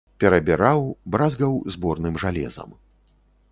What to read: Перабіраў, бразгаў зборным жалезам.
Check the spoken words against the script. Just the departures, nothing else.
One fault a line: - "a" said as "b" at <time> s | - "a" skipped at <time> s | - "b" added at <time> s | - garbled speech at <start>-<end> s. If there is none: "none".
none